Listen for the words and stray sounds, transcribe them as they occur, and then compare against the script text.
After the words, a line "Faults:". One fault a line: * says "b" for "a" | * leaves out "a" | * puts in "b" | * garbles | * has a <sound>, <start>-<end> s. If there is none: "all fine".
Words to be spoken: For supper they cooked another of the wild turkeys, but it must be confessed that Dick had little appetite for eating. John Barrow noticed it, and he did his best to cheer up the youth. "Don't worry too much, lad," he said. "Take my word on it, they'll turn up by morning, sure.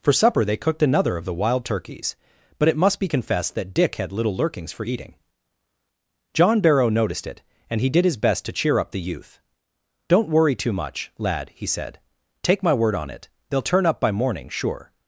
For supper they cooked another of the wild turkeys, but it must be confessed that Dick had little lurkings for eating. John Barrow noticed it, and he did his best to cheer up the youth. "Don't worry too much, lad," he said. "Take my word on it, they'll turn up by morning, sure.
Faults:
* says "lurkings" for "appetite"